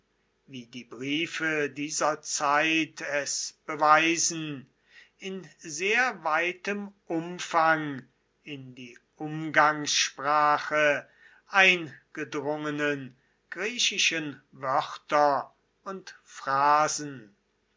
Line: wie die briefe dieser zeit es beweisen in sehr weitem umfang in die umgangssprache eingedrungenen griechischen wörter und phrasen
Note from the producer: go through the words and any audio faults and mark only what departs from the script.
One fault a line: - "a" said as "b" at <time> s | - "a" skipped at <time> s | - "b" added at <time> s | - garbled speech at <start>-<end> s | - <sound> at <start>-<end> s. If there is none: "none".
none